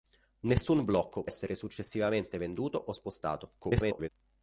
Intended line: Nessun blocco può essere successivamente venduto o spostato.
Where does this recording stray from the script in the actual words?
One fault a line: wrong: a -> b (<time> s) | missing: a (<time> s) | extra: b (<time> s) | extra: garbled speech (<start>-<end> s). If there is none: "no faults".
missing: può (1.2 s)
extra: garbled speech (3.6-4.1 s)